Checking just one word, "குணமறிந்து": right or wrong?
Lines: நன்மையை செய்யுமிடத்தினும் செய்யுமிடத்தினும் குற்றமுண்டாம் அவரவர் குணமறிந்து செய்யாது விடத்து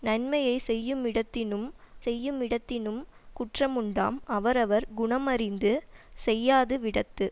right